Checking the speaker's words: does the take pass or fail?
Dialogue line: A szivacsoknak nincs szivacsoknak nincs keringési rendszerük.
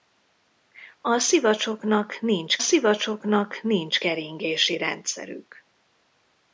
pass